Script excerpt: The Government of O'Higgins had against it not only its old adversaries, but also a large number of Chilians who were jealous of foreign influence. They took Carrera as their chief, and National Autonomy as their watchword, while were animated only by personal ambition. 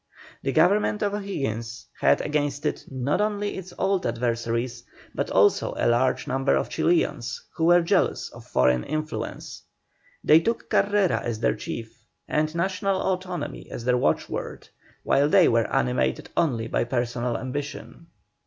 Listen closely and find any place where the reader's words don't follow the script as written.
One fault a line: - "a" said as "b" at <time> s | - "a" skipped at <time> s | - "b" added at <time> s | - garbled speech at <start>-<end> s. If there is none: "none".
- "they" added at 15.3 s